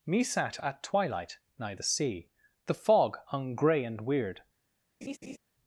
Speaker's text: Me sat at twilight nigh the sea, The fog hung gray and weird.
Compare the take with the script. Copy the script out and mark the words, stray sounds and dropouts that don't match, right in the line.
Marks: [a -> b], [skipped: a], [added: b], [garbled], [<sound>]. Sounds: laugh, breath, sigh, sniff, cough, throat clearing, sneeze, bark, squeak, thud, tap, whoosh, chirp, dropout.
Me sat at twilight nigh the sea, The fog hung gray and weird. [laugh]